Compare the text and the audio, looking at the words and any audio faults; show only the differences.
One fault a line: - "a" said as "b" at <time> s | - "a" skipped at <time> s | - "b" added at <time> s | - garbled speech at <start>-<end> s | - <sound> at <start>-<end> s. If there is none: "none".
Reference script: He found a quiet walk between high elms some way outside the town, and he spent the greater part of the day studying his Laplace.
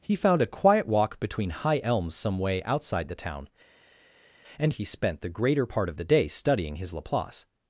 none